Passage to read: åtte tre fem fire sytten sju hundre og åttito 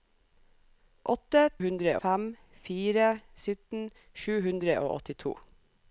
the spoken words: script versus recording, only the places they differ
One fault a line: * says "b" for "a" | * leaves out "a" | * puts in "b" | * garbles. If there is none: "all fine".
* says "hundre" for "tre"